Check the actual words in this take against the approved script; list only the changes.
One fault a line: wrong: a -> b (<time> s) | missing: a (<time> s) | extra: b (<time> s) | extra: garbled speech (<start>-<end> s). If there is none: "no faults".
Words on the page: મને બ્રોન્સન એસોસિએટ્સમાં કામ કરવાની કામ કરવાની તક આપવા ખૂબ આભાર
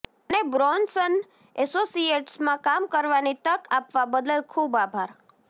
missing: કામ કરવાની (3.4 s)
extra: બદલ (4.1 s)